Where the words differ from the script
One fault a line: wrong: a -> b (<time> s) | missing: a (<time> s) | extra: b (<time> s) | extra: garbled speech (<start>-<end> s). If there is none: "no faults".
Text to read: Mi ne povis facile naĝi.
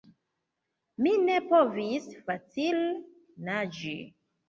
no faults